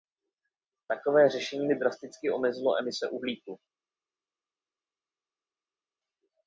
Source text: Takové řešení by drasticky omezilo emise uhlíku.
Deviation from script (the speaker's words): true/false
false